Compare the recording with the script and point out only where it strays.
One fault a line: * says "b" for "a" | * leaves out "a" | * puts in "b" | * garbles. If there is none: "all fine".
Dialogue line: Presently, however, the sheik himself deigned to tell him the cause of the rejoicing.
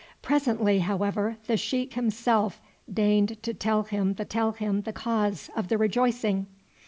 * puts in "tell him the"